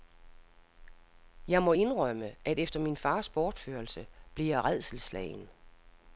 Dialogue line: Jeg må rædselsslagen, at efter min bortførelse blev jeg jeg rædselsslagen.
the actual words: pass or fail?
fail